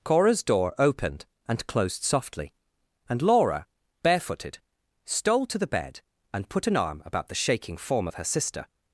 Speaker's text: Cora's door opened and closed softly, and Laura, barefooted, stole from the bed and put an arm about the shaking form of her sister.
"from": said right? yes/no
no